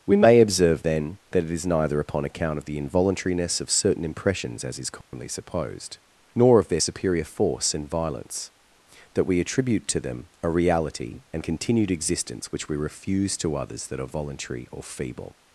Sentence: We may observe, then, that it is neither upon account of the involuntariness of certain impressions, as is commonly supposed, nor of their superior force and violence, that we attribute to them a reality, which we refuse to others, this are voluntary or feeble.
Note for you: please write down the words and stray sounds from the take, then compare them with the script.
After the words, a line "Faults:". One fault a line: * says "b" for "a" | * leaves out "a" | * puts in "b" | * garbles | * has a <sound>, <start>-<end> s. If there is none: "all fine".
We may observe, then, that it is neither upon account of the involuntariness of certain impressions, as is commonly supposed, nor of their superior force and violence, that we attribute to them a reality, and continued existence, which we refuse to others, that are voluntary or feeble.
Faults:
* has a dropout, 5.0-5.1 s
* puts in "and continued existence"
* says "that" for "this"